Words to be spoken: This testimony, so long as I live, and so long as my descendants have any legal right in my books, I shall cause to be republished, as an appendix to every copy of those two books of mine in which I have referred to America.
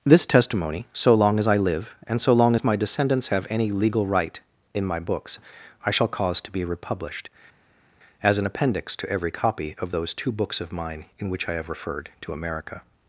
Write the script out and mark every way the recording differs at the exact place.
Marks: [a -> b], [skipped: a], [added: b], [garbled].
This testimony, so long as I live, and so long as my descendants have any legal right in my books, I shall cause to be republished, as an appendix to every copy of those two books of mine in which I have referred to America.